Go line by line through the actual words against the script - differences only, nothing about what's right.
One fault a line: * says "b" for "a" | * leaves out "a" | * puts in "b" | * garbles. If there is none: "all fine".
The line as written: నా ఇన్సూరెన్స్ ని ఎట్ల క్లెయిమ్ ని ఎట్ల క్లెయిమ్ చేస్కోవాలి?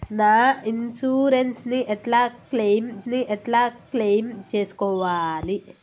all fine